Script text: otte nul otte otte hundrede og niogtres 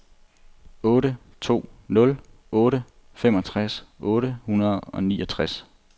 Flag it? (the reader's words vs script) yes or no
yes